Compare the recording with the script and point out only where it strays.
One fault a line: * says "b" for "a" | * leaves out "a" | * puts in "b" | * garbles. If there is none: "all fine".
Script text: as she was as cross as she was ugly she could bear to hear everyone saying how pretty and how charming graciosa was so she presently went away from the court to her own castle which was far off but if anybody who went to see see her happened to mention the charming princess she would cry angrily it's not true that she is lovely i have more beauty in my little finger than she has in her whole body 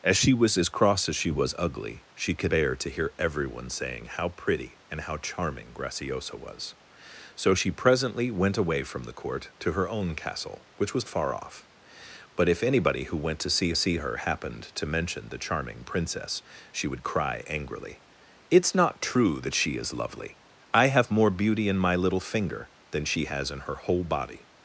all fine